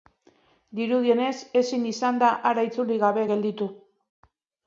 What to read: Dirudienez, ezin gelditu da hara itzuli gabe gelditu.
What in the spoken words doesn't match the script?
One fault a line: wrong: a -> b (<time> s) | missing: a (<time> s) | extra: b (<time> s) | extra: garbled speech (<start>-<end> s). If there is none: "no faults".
wrong: gelditu -> izan (1.9 s)